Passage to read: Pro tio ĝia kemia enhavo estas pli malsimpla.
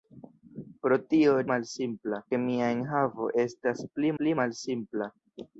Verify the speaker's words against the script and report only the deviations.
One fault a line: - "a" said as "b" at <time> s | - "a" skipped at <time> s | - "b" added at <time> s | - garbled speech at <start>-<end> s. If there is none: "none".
- "ĝia" said as "malsimpla" at 1.5 s
- "pli" added at 4.2 s